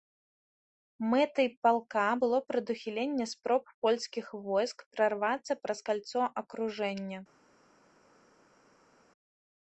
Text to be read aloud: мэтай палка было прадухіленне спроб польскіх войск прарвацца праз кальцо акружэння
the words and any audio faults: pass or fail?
pass